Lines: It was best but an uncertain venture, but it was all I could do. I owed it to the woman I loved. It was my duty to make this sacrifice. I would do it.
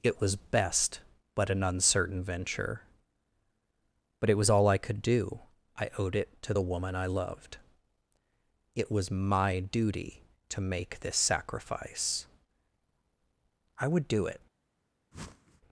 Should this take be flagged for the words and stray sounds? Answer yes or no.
yes